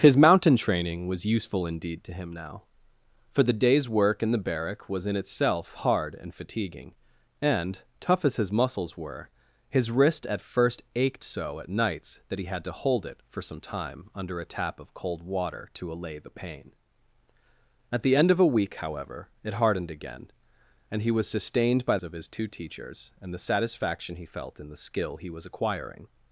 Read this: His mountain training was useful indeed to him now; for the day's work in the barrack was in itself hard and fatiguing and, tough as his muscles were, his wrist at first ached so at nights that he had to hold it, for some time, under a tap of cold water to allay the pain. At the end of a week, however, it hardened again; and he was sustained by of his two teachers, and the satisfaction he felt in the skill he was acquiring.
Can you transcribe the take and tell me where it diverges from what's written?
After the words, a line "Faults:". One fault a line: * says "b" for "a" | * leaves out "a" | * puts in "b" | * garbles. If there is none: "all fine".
His mountain training was useful indeed to him now; for the day's work in the barrack was in itself hard and fatiguing and, tough as his muscles were, his wrist at first ached so at nights that he had to hold it, for some time, under a tap of cold water to allay the pain. At the end of a week, however, it hardened again; and he was sustained by of his two teachers, and the satisfaction he felt in the skill he was acquiring.
Faults:
all fine